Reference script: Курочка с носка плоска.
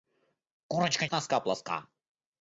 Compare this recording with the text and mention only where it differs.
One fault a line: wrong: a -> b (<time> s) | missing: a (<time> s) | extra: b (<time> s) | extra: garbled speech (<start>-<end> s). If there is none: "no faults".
no faults